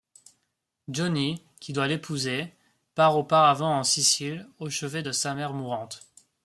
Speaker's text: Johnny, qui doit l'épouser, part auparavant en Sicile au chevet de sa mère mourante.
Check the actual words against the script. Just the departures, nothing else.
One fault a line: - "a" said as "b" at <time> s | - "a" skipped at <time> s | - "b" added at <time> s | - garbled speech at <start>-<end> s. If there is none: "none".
none